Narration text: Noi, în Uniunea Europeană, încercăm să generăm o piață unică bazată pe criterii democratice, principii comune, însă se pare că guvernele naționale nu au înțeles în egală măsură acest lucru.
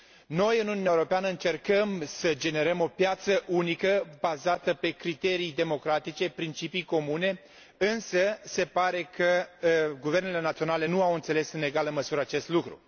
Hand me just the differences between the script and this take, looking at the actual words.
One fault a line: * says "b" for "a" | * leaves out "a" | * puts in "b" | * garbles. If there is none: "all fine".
all fine